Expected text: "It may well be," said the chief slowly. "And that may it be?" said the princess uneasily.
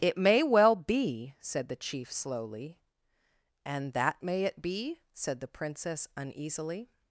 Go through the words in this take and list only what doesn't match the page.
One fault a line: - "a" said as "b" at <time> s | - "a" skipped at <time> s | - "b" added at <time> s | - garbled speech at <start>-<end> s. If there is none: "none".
none